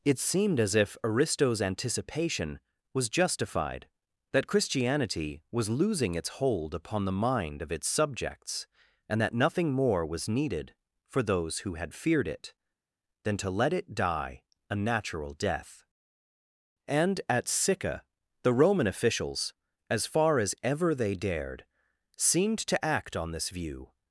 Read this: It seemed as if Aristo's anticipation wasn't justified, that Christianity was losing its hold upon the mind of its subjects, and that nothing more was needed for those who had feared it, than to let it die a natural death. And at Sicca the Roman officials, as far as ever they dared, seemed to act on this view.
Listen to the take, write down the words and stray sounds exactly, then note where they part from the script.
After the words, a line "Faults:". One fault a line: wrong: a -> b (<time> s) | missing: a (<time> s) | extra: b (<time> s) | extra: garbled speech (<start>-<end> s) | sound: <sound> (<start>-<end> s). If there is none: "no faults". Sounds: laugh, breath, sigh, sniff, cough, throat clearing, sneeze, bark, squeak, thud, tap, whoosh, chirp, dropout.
It seemed as if Aristo's anticipation was justified, that Christianity was losing its hold upon the mind of its subjects, and that nothing more was needed for those who had feared it, than to let it die a natural death. And at Sicca the Roman officials, as far as ever they dared, seemed to act on this view.
Faults:
wrong: wasn't -> was (2.9 s)